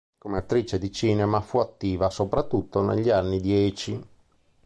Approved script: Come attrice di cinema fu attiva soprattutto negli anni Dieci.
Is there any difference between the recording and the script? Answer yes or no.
no